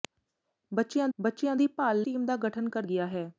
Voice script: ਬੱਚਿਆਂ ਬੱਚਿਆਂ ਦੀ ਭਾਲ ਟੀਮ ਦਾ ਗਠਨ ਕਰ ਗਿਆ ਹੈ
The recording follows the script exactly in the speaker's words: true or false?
true